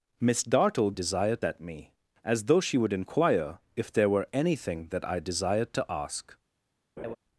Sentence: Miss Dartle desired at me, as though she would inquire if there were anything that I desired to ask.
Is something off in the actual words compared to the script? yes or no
no